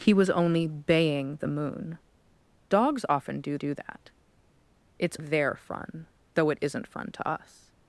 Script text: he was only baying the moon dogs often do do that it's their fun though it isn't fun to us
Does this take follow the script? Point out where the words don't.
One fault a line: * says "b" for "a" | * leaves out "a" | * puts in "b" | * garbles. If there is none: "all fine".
all fine